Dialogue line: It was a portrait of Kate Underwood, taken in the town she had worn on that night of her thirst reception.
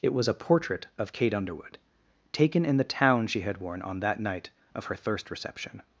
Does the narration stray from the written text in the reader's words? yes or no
no